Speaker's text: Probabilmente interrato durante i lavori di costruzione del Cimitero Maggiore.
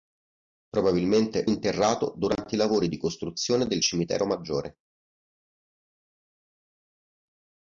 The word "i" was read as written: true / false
true